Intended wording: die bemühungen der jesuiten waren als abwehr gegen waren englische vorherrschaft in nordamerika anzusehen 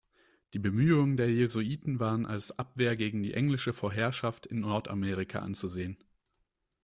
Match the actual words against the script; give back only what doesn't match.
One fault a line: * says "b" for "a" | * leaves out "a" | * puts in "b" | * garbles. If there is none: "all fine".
* says "die" for "waren"